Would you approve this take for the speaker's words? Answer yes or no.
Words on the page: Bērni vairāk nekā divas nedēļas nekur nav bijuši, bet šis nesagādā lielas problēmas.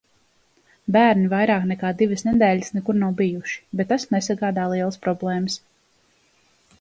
no